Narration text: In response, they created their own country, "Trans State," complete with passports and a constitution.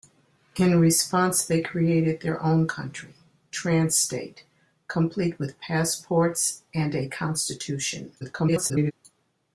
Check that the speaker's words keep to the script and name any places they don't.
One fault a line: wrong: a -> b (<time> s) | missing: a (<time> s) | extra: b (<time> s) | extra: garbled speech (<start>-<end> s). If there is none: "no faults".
extra: garbled speech (8.2-8.9 s)